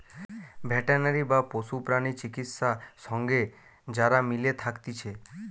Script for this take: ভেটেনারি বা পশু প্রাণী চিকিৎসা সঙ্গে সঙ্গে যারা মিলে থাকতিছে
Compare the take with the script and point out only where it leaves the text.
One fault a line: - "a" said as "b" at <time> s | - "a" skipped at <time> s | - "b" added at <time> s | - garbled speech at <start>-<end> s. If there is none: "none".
- "সঙ্গে" skipped at 3.4 s